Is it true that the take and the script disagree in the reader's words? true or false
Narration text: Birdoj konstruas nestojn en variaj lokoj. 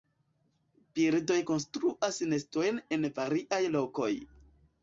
false